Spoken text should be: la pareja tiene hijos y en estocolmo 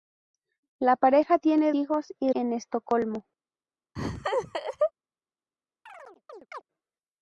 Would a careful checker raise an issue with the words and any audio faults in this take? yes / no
yes